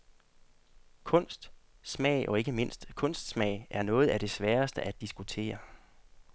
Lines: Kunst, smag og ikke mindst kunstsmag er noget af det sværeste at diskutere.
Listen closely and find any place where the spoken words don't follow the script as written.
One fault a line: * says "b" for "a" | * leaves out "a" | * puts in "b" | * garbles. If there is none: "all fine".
all fine